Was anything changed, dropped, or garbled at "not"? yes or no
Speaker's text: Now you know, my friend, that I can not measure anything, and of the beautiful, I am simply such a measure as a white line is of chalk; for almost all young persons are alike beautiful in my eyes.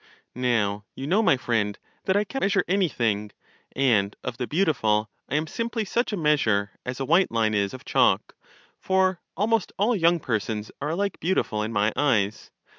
yes